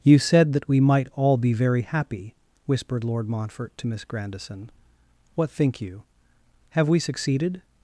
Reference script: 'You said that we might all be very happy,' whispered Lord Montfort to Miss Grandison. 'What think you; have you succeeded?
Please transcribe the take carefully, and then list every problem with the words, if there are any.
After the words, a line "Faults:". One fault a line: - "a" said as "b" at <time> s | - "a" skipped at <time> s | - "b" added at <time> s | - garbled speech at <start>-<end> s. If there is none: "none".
'You said that we might all be very happy,' whispered Lord Montfort to Miss Grandison. 'What think you; have we succeeded?
Faults:
- "you" said as "we" at 6.9 s